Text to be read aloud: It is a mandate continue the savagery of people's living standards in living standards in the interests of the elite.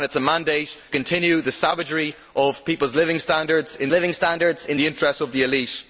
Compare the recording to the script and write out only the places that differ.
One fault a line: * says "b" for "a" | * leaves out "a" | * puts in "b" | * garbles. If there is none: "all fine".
all fine